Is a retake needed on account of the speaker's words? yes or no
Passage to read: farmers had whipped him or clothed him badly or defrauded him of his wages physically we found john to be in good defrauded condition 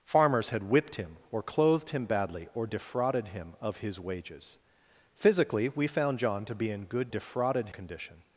no